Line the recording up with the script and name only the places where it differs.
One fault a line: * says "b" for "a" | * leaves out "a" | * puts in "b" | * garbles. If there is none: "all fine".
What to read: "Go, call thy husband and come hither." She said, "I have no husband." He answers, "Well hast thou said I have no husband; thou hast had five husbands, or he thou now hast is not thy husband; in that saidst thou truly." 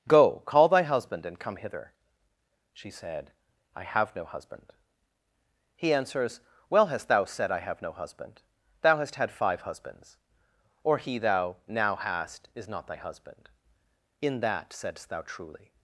all fine